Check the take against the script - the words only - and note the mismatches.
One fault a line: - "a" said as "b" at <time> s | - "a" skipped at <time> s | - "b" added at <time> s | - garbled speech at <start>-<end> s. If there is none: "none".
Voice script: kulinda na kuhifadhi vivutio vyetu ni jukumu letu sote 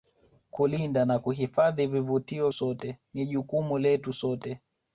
- "vyetu" said as "sote" at 2.5 s